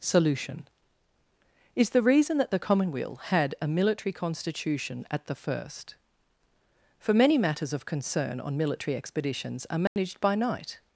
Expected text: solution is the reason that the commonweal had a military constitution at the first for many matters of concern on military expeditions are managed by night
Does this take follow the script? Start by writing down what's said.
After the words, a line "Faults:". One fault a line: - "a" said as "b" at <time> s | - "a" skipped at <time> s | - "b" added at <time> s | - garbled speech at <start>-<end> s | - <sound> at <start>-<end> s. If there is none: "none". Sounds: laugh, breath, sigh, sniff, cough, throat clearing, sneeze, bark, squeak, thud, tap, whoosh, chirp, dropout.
solution is the reason that the commonweal had a military constitution at the first for many matters of concern on military expeditions are managed by night
Faults:
- dropout at 9.9-10.0 s